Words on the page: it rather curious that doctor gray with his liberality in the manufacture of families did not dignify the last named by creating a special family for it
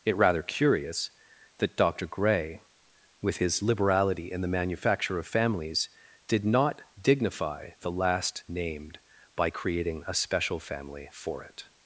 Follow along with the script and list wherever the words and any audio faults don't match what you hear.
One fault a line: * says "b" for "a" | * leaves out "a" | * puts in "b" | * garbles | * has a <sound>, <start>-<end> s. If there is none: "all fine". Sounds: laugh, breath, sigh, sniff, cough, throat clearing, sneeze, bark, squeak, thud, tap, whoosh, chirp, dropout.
all fine